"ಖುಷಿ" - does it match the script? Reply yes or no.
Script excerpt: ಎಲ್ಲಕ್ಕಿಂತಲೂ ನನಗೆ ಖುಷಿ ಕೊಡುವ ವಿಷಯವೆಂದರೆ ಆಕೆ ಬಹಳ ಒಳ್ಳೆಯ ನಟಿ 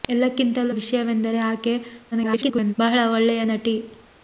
no